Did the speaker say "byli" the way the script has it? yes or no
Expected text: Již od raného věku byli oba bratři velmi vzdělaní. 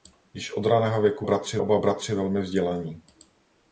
no